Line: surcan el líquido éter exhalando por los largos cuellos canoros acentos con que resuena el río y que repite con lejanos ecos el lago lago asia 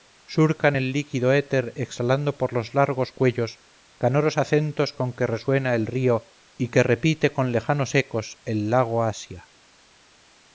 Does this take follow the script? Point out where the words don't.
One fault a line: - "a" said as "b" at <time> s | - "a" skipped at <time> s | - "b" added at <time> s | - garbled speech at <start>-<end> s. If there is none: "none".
- "lago" skipped at 9.0 s